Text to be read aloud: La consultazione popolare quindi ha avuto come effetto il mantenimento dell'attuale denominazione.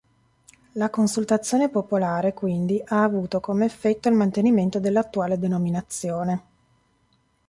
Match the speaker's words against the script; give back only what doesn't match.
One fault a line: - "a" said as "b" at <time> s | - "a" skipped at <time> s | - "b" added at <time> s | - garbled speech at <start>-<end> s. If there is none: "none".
none